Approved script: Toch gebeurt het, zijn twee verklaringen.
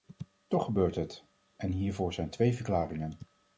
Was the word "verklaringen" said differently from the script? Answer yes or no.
no